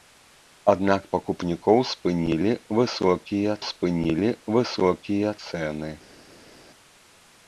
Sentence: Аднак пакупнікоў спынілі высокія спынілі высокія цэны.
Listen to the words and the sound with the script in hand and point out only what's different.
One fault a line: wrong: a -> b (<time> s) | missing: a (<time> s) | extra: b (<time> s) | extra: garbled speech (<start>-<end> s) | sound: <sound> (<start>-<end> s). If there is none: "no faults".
no faults